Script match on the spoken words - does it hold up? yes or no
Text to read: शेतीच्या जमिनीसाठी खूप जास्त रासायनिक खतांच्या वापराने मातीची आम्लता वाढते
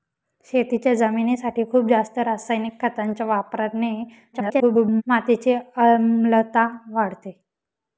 no